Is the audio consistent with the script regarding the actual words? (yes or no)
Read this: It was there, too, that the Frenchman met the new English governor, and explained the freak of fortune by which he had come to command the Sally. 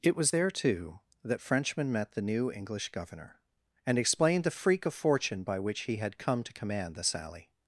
no